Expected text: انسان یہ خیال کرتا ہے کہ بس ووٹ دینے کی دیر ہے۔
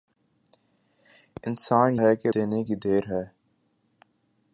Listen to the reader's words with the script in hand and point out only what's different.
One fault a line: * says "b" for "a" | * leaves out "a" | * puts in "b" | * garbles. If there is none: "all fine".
* leaves out "یہ خیال کرتا"
* leaves out "بس ووٹ"